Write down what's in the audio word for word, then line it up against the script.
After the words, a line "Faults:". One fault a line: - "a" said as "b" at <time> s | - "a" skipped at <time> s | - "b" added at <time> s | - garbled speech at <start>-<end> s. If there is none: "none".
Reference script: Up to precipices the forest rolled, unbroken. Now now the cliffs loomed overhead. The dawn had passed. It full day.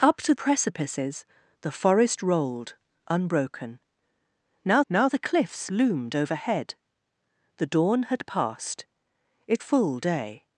Up to precipices the forest rolled, unbroken. Now now the cliffs loomed overhead. The dawn had passed. It full day.
Faults:
none